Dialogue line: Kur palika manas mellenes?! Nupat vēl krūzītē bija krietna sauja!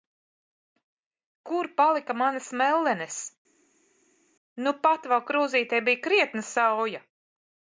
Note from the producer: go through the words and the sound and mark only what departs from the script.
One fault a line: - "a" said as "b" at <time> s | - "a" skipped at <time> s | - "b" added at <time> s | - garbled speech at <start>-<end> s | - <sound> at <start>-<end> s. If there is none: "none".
none